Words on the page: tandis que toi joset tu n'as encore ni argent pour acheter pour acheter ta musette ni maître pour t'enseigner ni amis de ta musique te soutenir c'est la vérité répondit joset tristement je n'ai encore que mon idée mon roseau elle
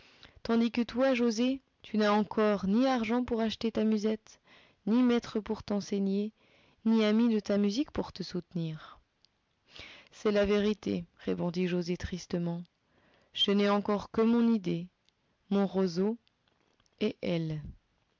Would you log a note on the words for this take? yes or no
yes